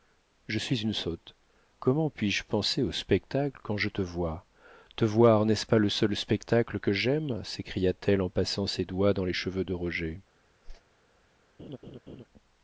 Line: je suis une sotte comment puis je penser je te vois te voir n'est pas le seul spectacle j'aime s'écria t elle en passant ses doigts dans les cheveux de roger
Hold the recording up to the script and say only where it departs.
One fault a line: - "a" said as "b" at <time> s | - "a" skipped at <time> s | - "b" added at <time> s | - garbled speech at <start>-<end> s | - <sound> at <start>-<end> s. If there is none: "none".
- "au spectacle quand" added at 2.8 s
- "ce" added at 5.5 s
- "que" added at 6.8 s
- whoosh at 10.6-10.8 s
- laugh at 11.6-12.2 s